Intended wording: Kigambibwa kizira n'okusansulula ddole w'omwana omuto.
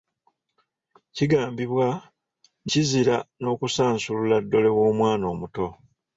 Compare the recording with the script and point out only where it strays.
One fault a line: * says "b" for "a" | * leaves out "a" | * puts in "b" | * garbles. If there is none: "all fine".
all fine